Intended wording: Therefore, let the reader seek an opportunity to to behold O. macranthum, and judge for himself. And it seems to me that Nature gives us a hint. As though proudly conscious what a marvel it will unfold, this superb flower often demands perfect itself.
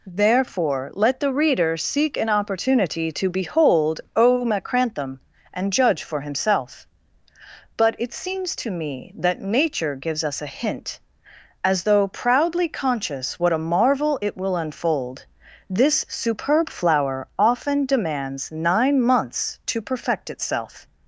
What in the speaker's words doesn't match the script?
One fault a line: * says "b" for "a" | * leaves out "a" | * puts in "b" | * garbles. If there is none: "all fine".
* leaves out "to"
* says "But" for "And"
* puts in "nine months to"